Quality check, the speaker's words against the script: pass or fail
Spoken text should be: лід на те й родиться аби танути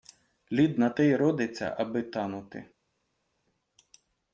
pass